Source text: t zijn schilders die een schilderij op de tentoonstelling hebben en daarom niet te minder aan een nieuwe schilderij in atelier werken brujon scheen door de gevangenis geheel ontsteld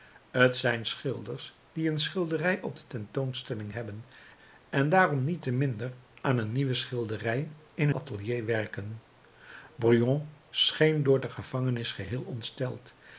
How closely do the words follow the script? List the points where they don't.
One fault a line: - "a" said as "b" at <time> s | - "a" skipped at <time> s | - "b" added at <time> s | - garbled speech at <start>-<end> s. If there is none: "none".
none